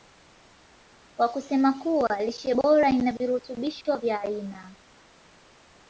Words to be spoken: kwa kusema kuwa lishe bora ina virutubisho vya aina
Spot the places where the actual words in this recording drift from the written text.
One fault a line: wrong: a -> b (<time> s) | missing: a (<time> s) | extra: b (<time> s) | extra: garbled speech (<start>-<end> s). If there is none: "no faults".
no faults